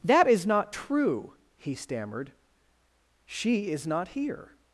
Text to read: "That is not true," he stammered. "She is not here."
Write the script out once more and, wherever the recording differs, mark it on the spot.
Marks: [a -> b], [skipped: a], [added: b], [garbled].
"That is not true," he stammered. "She is not here."